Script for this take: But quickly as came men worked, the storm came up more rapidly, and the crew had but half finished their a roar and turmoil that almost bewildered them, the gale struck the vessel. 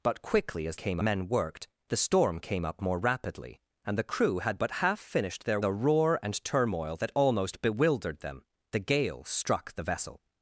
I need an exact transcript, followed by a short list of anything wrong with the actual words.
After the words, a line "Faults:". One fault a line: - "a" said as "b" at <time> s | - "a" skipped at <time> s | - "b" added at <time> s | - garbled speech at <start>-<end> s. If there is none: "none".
But quickly as came men worked, the storm came up more rapidly, and the crew had but half finished their a roar and turmoil that almost bewildered them, the gale struck the vessel.
Faults:
none